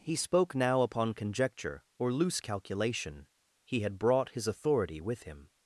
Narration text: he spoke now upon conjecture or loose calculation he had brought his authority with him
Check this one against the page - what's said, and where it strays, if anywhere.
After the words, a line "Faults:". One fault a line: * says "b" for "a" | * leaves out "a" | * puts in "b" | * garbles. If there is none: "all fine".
he spoke now upon conjecture or loose calculation he had brought his authority with him
Faults:
all fine